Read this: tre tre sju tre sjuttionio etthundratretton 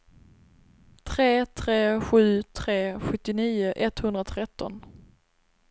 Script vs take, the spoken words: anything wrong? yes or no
no